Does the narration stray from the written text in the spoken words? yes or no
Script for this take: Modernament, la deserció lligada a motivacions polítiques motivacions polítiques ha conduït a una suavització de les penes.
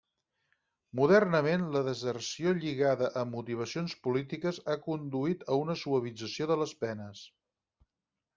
yes